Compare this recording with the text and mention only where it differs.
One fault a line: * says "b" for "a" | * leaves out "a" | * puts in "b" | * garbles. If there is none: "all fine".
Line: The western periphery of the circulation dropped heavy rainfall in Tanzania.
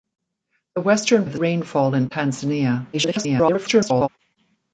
* leaves out "periphery"
* leaves out "circulation dropped heavy"
* garbles